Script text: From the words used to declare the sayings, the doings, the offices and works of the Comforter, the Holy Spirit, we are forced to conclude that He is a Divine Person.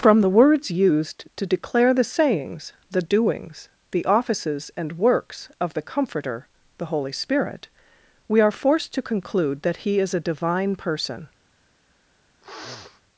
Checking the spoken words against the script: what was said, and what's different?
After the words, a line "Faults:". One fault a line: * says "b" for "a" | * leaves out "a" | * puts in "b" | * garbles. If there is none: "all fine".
From the words used to declare the sayings, the doings, the offices and works of the Comforter, the Holy Spirit, we are forced to conclude that He is a Divine Person.
Faults:
all fine